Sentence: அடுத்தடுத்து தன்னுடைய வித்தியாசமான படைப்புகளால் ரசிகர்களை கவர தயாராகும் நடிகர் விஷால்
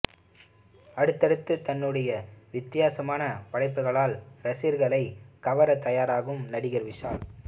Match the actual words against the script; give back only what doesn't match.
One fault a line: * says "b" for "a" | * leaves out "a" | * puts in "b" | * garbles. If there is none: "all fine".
all fine